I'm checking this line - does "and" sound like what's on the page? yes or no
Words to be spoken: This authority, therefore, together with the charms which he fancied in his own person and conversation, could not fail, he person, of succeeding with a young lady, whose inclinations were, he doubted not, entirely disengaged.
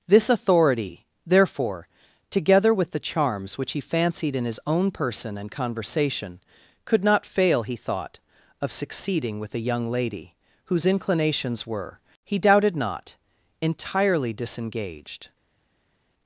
yes